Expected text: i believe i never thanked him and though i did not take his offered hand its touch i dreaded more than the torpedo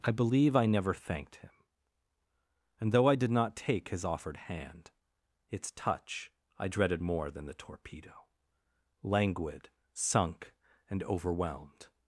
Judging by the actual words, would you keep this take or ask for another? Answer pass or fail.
fail